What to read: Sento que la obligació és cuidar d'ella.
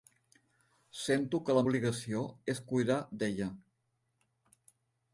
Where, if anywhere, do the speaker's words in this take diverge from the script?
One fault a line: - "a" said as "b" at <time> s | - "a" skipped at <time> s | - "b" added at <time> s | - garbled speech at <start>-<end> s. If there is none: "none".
none